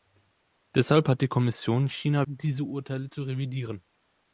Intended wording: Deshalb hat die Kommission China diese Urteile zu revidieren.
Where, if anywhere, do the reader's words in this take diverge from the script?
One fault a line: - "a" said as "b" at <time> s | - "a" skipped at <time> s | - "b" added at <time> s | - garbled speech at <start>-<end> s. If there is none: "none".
none